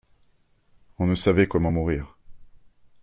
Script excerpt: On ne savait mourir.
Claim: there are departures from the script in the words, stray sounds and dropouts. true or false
true